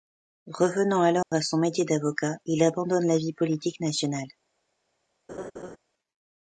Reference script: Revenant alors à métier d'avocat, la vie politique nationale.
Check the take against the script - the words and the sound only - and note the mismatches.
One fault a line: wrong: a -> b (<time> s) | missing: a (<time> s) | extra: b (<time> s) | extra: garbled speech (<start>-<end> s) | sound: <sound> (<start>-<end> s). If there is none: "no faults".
sound: dropout (1.2-1.3 s)
extra: son (1.4 s)
extra: il abandonne (2.4 s)
sound: laugh (5.3-5.8 s)